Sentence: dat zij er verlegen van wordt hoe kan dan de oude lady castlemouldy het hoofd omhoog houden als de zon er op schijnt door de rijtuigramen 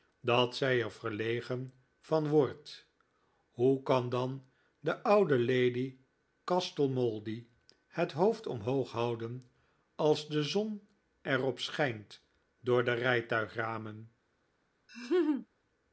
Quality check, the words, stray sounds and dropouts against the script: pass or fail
fail